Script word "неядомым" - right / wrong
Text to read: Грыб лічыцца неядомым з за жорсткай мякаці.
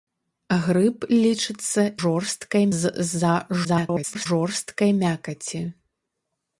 wrong